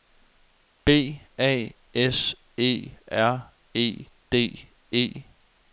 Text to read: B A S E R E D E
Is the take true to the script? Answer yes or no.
yes